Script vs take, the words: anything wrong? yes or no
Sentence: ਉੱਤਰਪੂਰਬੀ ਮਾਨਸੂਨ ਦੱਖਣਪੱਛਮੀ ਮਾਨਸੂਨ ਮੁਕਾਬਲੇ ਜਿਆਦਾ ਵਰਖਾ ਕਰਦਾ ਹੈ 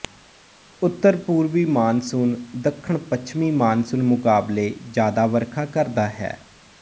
no